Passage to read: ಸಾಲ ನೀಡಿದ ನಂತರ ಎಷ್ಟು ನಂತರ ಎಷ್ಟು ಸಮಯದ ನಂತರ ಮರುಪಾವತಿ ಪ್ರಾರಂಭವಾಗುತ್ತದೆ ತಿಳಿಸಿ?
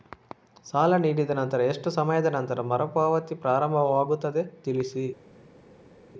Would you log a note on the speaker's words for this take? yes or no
yes